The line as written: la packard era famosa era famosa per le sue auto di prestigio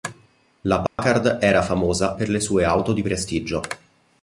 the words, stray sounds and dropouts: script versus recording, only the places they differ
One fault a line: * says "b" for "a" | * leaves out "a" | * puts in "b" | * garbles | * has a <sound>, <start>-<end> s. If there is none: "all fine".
* has a dropout, 0.9-1.0 s
* leaves out "era famosa"